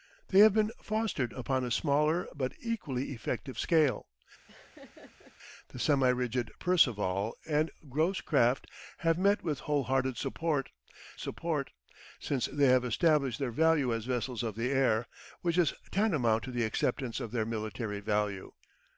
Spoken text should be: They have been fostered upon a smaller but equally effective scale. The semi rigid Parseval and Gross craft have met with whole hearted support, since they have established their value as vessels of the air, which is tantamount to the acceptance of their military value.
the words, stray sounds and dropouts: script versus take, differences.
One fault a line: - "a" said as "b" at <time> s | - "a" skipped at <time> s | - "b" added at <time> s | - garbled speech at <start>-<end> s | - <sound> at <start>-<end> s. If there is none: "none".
- laugh at 4.5-5.4 s
- "support" added at 11.2 s